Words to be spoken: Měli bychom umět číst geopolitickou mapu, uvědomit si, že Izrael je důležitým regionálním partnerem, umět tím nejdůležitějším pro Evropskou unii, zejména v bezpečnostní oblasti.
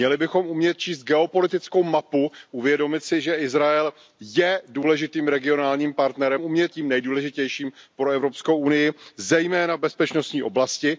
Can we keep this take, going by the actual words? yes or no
yes